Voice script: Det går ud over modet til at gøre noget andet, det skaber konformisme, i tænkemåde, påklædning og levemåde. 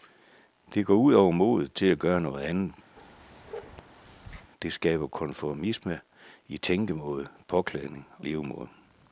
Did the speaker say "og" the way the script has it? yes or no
no